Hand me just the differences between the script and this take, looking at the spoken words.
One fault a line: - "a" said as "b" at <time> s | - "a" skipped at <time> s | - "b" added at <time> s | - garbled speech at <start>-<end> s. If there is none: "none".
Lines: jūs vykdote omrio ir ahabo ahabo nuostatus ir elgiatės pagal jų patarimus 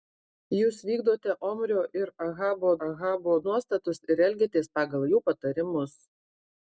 none